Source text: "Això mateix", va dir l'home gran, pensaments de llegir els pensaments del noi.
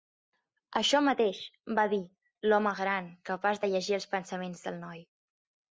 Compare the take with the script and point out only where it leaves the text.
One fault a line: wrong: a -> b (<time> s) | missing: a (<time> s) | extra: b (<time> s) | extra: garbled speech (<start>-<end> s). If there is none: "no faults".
wrong: pensaments -> capaç (3.3 s)